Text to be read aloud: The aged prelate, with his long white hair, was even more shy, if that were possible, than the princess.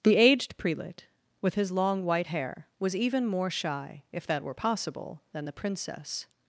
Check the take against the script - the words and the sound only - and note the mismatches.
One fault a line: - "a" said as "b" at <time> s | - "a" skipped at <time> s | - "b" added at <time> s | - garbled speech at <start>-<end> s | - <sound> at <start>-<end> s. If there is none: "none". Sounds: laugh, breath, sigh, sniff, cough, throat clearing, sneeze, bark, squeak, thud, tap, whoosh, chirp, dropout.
none